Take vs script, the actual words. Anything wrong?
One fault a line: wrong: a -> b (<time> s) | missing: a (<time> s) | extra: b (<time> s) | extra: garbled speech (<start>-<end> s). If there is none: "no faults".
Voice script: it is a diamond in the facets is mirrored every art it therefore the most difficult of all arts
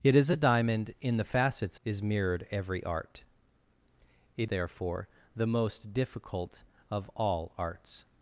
no faults